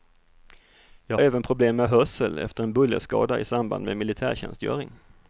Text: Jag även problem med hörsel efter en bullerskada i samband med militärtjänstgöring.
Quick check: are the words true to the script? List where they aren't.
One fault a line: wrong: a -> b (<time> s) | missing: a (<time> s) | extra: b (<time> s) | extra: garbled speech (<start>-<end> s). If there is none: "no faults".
no faults